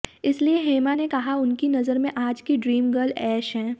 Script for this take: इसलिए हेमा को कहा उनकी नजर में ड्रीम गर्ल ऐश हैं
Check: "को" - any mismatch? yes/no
yes